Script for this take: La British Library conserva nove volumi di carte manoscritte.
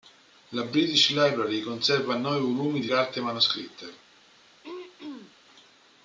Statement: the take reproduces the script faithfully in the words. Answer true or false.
true